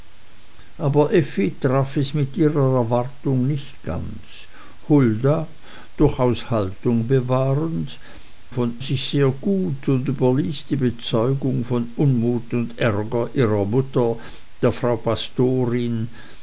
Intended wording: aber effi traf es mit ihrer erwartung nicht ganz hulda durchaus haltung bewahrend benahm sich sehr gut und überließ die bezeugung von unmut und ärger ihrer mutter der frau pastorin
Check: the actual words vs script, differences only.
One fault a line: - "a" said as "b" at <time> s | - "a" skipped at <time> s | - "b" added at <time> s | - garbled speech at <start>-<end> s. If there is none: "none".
- "benahm" said as "von" at 8.5 s